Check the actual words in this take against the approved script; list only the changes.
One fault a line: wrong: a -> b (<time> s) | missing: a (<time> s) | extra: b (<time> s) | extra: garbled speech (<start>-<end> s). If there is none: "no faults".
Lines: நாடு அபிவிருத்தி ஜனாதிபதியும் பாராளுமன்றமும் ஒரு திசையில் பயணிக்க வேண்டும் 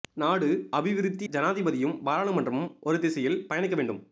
no faults